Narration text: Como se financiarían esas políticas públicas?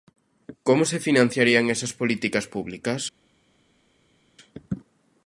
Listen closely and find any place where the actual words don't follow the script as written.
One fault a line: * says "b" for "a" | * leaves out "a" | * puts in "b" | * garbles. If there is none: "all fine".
all fine